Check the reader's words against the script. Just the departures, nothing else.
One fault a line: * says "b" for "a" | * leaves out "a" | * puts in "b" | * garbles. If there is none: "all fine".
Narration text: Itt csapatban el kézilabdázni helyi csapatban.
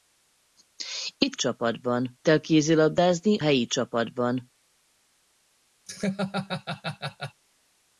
all fine